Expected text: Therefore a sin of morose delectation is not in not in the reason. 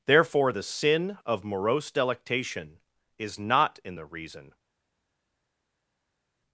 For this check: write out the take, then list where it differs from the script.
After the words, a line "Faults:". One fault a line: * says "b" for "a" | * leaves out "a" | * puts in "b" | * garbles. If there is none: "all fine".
Therefore the sin of morose delectation is not in the reason.
Faults:
* says "the" for "a"
* leaves out "not in"